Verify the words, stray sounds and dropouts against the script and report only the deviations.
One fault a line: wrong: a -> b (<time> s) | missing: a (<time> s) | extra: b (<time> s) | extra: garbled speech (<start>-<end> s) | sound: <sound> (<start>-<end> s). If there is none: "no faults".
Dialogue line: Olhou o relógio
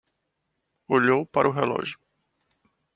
extra: para (1.3 s)